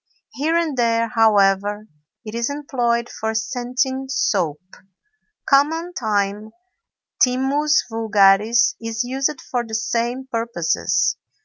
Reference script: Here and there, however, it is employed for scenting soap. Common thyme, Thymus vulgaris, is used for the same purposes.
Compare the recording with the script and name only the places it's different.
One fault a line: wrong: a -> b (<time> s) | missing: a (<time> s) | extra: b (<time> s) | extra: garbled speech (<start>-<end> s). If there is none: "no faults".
no faults